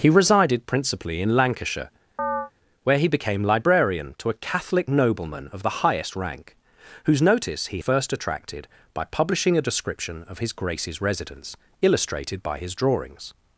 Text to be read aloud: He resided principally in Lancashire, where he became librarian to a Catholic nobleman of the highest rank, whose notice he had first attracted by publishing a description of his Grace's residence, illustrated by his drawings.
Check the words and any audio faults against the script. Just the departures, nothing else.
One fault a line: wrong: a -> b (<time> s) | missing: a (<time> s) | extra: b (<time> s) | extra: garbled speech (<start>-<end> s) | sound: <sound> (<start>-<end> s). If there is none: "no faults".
sound: chirp (2.2-2.5 s)
missing: had (7.8 s)